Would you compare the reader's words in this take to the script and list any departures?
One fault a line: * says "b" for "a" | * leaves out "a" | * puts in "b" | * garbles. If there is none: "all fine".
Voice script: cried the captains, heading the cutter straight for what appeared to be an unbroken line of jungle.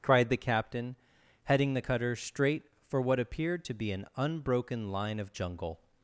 * says "captain" for "captains"